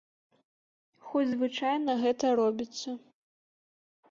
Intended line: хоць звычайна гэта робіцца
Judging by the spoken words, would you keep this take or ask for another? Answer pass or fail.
pass